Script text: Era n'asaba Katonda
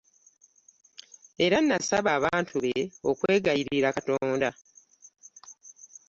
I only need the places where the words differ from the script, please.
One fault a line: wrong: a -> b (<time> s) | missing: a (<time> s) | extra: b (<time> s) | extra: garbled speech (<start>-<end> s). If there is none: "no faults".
extra: abantu be okwegayirira (2.2 s)